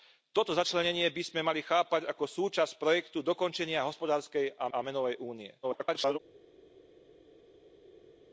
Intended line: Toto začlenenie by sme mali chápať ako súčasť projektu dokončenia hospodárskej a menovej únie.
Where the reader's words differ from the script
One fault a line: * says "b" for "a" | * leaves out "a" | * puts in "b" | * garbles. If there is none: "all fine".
* puts in "a"
* garbles